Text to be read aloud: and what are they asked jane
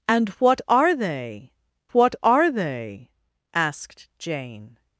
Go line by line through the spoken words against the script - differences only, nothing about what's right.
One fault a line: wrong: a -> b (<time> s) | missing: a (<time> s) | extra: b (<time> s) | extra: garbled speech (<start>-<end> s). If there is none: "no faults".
extra: what are they (1.9 s)